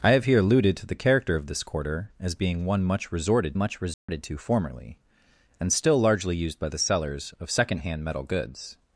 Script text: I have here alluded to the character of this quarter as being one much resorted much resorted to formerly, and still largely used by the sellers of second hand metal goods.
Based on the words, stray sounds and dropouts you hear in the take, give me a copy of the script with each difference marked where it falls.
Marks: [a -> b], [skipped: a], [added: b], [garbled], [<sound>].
I have here alluded to the character of this quarter as being one much resorted much resorted [dropout] to formerly, and still largely used by the sellers of second hand metal goods.